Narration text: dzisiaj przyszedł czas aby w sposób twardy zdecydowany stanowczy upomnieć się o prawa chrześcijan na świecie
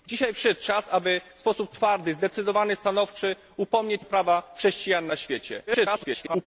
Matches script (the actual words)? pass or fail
fail